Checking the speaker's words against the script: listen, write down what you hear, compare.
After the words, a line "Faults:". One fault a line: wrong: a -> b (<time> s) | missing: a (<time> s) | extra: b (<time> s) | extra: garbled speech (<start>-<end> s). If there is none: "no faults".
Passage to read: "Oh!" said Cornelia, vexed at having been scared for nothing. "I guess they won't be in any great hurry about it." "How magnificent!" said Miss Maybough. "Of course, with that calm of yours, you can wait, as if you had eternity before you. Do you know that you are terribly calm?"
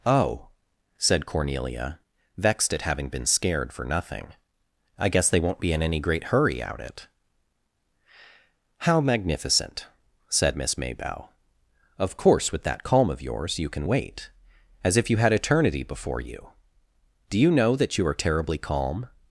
"Oh!" said Cornelia, vexed at having been scared for nothing. "I guess they won't be in any great hurry out it." "How magnificent!" said Miss Maybough. "Of course, with that calm of yours, you can wait, as if you had eternity before you. Do you know that you are terribly calm?"
Faults:
wrong: about -> out (6.6 s)